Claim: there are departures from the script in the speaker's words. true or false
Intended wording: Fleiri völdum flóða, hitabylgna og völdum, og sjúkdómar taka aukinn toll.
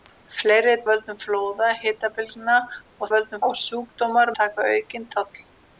false